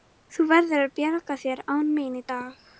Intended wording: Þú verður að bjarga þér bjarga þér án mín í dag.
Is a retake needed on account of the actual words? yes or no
yes